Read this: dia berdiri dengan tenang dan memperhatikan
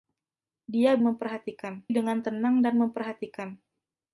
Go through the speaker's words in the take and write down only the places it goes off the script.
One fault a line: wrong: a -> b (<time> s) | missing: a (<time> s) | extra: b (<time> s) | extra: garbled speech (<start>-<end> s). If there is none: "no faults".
wrong: berdiri -> memperhatikan (1.0 s)